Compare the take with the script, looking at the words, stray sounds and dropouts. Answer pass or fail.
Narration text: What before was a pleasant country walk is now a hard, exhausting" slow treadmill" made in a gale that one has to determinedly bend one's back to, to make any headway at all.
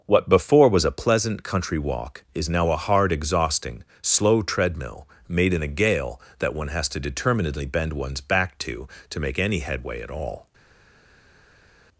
pass